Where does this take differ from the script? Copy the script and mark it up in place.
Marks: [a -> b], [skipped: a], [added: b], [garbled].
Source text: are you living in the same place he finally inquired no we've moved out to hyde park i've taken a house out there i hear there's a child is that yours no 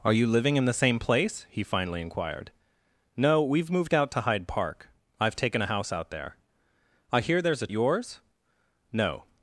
are you living in the same place he finally inquired no we've moved out to hyde park i've taken a house out there i hear there's a [skipped: child is that] yours no